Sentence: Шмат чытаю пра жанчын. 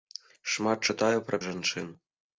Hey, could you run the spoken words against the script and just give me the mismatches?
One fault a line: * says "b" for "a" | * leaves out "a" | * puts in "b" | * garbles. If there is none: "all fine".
all fine